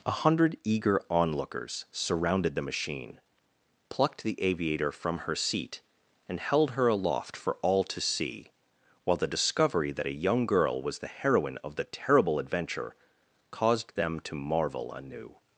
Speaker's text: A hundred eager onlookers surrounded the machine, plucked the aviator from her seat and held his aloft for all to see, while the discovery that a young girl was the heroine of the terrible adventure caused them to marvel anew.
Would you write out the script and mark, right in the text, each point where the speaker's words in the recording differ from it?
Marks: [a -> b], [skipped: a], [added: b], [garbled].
A hundred eager onlookers surrounded the machine, plucked the aviator from her seat and held [his -> her] aloft for all to see, while the discovery that a young girl was the heroine of the terrible adventure caused them to marvel anew.